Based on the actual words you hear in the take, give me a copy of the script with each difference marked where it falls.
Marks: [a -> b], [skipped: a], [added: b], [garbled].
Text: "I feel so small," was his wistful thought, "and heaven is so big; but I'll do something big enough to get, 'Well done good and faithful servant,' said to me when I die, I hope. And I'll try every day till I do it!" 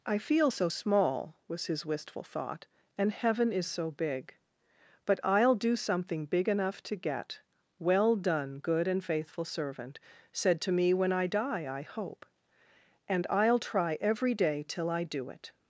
"I feel so small," was his wistful thought, "and heaven is so big; but I'll do something big enough to get, 'Well done good and faithful servant,' said to me when I die, I hope. And I'll try every day till I do it!"